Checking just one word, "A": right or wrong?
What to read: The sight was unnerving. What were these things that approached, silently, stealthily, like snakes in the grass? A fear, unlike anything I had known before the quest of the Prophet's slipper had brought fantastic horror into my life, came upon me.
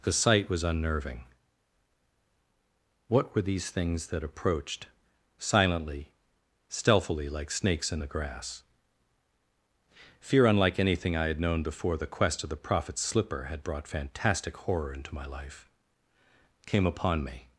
wrong